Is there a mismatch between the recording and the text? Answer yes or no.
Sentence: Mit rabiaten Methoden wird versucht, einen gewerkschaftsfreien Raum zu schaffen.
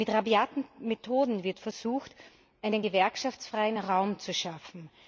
no